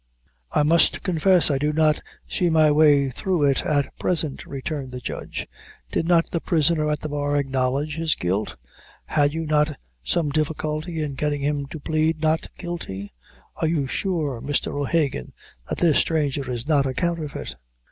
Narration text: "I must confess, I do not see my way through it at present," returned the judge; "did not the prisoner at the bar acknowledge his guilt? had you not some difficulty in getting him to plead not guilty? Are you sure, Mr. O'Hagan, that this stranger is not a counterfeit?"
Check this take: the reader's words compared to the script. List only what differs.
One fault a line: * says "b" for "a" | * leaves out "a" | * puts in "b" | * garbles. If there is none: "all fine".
all fine